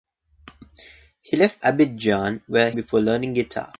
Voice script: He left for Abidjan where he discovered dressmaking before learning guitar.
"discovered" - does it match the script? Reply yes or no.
no